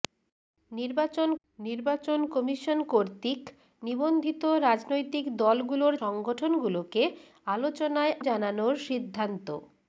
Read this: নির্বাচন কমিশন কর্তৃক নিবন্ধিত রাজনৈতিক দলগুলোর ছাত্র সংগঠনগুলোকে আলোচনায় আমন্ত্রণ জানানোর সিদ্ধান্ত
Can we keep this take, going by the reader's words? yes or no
no